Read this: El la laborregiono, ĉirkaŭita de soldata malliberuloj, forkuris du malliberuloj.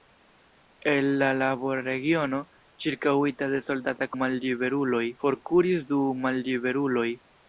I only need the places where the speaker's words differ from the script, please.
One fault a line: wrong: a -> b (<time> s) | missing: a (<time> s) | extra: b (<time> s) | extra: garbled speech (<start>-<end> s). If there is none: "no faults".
no faults